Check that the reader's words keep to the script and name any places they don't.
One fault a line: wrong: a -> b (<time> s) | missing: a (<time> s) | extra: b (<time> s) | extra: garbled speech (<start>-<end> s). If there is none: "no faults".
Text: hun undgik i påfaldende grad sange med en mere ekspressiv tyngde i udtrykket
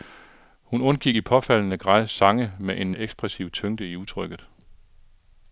missing: mere (2.9 s)